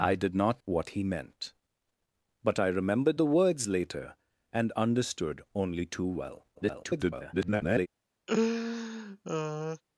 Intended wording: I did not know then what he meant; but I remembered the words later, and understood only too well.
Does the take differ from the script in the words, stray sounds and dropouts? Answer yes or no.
yes